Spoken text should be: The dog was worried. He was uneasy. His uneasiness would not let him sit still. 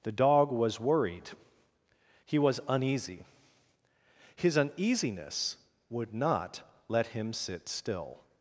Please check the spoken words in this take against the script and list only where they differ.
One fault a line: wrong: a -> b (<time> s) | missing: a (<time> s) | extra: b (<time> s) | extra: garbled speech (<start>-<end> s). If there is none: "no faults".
no faults